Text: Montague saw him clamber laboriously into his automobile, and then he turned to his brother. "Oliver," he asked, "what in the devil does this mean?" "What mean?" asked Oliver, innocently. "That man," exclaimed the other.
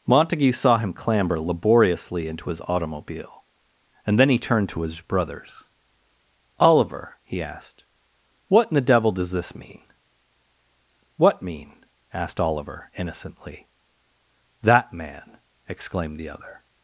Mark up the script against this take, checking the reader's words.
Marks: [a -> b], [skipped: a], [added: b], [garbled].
Montague saw him clamber laboriously into his automobile, and then he turned to his [brother. -> brothers] "Oliver," he asked, "what in the devil does this mean?" "What mean?" asked Oliver, innocently. "That man," exclaimed the other.